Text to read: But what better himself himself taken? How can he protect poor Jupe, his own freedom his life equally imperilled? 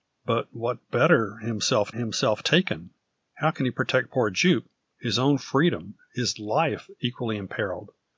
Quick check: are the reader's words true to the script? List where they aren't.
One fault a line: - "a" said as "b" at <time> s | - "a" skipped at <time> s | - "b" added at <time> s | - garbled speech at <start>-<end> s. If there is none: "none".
none